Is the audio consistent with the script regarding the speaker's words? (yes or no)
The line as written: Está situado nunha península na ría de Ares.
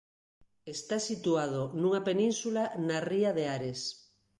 yes